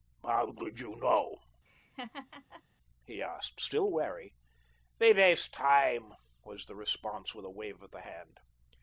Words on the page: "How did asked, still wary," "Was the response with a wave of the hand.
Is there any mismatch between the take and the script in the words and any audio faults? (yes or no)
yes